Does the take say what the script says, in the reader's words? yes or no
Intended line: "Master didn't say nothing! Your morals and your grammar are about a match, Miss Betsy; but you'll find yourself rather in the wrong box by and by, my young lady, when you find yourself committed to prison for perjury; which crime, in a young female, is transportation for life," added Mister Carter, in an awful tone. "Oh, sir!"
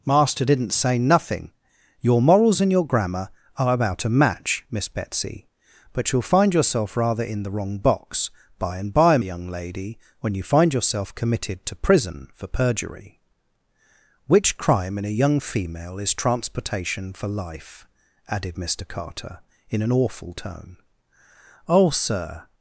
no